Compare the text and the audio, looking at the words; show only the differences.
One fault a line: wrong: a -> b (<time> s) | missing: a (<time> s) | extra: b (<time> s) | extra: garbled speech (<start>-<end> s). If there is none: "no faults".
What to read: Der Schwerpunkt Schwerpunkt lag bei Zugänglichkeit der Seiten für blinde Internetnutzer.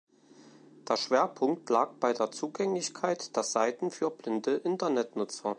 missing: Schwerpunkt (1.7 s)
extra: der (2.1 s)